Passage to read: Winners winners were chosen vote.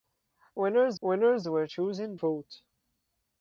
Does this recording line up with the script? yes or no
yes